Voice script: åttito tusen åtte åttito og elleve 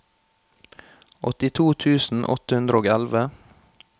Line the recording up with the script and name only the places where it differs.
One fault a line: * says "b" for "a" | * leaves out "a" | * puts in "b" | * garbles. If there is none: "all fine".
* says "hundre" for "åttito"